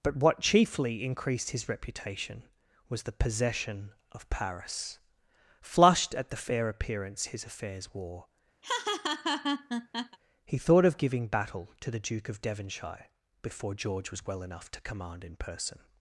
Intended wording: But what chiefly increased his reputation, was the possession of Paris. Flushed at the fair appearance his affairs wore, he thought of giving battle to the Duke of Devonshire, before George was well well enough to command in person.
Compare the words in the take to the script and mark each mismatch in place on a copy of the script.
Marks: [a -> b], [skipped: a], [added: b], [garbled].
But what chiefly increased his reputation, was the possession of Paris. Flushed at the fair appearance his affairs wore, he thought of giving battle to the Duke of Devonshire, before George was well [skipped: well] enough to command in person.